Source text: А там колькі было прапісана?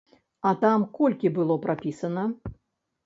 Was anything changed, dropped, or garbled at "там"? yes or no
no